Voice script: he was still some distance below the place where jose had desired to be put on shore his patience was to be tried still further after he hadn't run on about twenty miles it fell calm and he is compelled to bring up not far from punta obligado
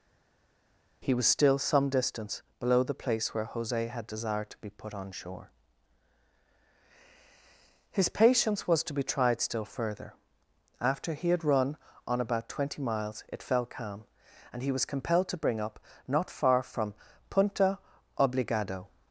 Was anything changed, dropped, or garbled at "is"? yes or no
yes